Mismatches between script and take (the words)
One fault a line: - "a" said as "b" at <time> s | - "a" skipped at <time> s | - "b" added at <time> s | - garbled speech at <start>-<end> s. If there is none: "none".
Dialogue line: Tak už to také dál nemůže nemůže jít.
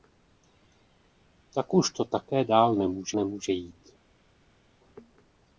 none